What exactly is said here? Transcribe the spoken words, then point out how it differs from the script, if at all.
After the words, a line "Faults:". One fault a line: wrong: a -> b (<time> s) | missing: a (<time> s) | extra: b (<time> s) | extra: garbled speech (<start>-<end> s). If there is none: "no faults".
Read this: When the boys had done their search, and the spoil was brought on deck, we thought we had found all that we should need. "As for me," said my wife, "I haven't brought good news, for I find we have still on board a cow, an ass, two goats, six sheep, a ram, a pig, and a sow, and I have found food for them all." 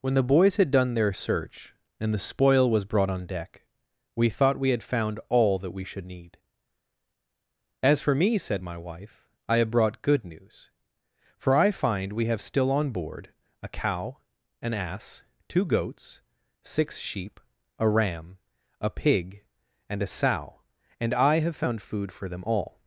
When the boys had done their search, and the spoil was brought on deck, we thought we had found all that we should need. "As for me," said my wife, "I have brought good news, for I find we have still on board a cow, an ass, two goats, six sheep, a ram, a pig, and a sow, and I have found food for them all."
Faults:
wrong: haven't -> have (9.6 s)